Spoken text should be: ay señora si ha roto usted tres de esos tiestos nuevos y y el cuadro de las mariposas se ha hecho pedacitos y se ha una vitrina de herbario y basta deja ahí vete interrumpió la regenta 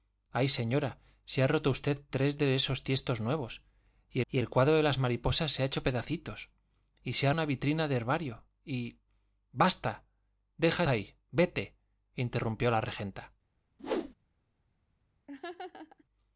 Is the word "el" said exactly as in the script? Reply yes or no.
yes